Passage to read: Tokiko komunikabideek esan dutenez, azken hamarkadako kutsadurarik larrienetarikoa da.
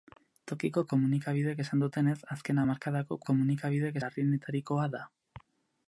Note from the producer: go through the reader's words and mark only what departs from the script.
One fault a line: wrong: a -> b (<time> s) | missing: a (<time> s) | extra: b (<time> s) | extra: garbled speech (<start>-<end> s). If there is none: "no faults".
wrong: kutsadurarik -> komunikabideek (3.3 s)